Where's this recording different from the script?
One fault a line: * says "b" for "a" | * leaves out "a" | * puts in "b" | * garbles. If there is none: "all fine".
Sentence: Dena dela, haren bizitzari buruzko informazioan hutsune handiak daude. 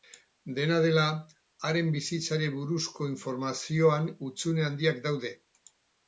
all fine